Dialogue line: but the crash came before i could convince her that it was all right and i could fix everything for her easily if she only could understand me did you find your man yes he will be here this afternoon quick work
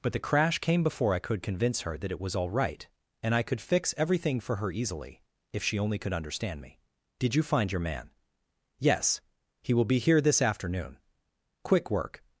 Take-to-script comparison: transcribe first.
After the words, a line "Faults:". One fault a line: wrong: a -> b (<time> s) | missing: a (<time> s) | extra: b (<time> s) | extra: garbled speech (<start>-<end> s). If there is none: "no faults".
but the crash came before i could convince her that it was all right and i could fix everything for her easily if she only could understand me did you find your man yes he will be here this afternoon quick work
Faults:
no faults